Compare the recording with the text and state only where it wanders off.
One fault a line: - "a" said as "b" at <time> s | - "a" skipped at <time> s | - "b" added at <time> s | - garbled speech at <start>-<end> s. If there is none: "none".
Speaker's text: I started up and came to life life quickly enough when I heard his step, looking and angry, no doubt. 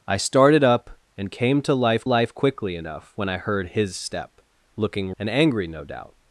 none